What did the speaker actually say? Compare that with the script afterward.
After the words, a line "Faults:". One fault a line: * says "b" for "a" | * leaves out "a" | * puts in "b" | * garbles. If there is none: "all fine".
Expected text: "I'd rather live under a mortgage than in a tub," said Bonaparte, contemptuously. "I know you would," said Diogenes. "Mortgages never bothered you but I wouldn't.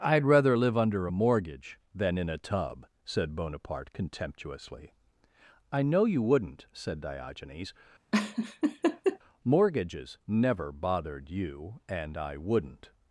"I'd rather live under a mortgage than in a tub," said Bonaparte, contemptuously. "I know you wouldn't," said Diogenes. "Mortgages never bothered you and I wouldn't.
Faults:
* says "wouldn't" for "would"
* says "and" for "but"